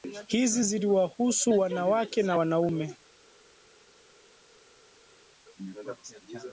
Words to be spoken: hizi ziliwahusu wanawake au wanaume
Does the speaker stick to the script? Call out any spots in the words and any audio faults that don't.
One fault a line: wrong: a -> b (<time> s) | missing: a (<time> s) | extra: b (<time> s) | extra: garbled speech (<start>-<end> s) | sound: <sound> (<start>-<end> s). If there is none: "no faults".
wrong: au -> na (2.2 s)